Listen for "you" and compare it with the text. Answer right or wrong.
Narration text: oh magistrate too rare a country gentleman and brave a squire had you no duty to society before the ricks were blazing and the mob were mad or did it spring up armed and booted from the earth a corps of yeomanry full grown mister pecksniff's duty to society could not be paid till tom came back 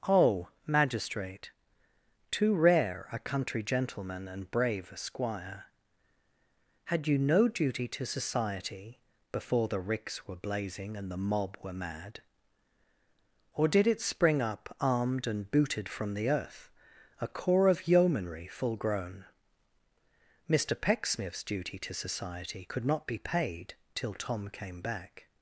right